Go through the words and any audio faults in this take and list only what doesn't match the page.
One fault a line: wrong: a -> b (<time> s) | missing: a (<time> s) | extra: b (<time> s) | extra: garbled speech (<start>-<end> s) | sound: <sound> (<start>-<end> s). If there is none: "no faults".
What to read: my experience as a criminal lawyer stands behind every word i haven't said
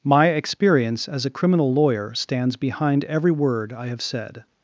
wrong: haven't -> have (3.9 s)